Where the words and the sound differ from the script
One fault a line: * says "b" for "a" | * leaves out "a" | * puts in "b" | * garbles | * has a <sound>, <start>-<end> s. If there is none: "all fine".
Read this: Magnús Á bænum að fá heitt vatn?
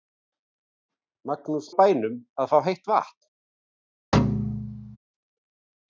* has a thud, 4.1-5.0 s